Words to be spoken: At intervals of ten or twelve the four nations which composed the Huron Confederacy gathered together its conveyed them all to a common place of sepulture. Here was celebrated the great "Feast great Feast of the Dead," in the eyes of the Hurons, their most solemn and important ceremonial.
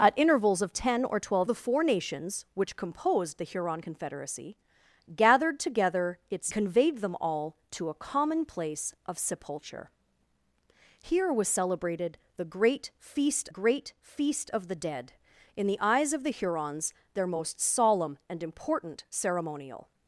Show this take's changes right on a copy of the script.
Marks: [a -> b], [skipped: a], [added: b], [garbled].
At intervals of ten or twelve the four nations which composed the Huron Confederacy gathered together its conveyed them all to a common place of sepulture. Here was celebrated the great "Feast great Feast of the Dead," in the eyes of the Hurons, their most solemn and important ceremonial.